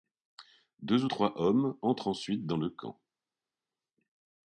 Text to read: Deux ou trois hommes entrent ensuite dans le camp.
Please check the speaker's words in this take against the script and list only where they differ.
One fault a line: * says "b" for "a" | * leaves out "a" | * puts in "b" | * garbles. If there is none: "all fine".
all fine